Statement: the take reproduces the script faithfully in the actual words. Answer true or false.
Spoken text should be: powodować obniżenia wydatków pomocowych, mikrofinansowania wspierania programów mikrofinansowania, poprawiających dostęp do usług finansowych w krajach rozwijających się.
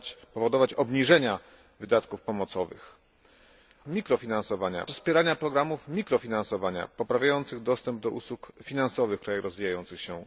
true